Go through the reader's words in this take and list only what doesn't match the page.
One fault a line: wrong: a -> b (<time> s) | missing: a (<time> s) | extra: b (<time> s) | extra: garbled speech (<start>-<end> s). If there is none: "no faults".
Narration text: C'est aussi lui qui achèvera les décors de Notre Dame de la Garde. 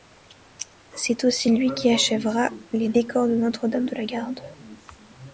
no faults